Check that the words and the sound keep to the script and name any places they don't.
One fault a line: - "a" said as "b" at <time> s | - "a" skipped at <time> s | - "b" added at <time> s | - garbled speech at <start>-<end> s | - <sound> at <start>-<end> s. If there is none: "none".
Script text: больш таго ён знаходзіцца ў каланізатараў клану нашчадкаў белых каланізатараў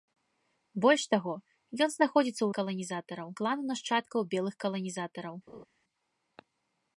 - laugh at 5.5-5.7 s